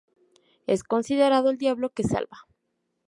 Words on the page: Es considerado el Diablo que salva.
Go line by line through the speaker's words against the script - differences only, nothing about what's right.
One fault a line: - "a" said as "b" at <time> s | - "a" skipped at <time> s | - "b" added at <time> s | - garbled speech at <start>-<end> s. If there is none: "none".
none